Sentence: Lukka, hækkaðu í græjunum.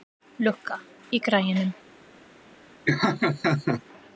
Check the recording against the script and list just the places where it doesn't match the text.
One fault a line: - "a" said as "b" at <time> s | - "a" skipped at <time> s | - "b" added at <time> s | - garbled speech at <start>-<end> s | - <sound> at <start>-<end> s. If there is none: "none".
- "hækkaðu" skipped at 0.8 s
- laugh at 2.9-3.8 s